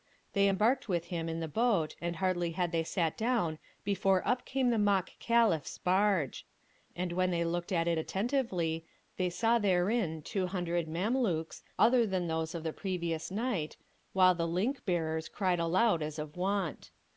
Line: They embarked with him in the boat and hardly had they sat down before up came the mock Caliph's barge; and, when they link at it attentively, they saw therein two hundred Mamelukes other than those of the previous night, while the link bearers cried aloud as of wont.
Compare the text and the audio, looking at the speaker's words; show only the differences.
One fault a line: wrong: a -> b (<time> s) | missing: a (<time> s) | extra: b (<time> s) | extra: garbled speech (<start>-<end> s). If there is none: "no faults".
wrong: link -> looked (7.4 s)